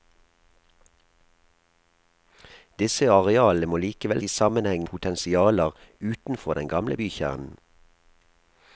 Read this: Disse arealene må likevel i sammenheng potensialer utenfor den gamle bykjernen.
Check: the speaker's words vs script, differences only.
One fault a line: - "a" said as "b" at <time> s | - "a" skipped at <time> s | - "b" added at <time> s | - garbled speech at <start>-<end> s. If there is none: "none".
none